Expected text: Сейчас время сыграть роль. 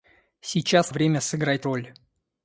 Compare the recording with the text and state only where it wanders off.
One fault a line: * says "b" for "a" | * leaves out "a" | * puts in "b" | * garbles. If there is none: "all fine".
all fine